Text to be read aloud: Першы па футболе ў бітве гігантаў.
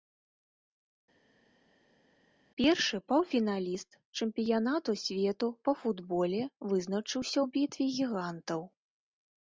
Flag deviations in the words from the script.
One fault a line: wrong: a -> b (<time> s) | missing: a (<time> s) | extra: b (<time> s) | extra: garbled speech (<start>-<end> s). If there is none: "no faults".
extra: паўфіналіст чэмпіянату свету (3.1 s)
extra: вызначыўся (6.7 s)